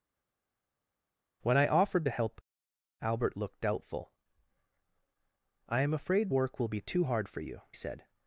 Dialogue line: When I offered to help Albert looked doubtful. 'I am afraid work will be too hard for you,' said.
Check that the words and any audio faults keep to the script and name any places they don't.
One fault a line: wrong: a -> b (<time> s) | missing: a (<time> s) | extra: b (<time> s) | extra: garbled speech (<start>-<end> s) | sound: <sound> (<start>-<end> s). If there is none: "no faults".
no faults